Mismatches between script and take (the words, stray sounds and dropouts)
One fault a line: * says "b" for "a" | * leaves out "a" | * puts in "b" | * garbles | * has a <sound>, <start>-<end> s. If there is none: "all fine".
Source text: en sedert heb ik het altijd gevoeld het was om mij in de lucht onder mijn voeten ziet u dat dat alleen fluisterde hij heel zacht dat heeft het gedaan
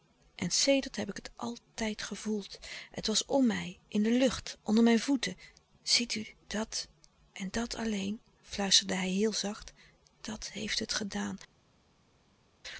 * puts in "en"